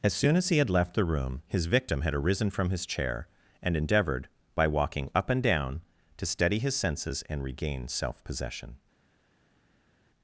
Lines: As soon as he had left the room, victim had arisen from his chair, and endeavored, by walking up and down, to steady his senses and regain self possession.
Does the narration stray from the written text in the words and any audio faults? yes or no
yes